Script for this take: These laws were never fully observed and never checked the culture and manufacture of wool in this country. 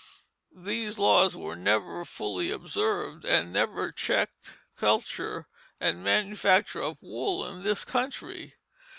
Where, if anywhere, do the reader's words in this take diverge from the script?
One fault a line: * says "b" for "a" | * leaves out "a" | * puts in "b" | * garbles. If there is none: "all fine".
* leaves out "the"